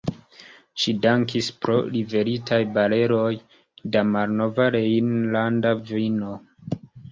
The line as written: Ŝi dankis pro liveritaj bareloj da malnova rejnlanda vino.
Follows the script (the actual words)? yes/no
yes